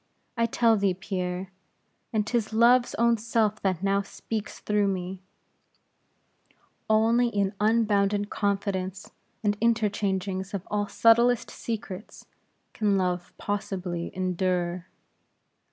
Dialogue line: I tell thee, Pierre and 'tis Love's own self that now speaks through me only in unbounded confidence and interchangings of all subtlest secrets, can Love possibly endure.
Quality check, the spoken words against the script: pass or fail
pass